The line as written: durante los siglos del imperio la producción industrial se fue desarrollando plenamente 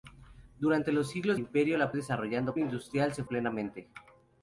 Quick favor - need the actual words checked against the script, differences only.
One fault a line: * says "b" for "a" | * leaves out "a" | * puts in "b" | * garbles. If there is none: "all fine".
* leaves out "del"
* says "desarrollando" for "producción"
* leaves out "fue desarrollando"